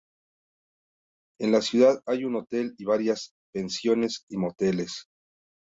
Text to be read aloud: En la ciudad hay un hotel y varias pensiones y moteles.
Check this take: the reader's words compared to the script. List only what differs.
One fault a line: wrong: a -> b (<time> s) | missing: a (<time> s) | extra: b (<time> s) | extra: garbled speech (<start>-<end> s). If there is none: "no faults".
no faults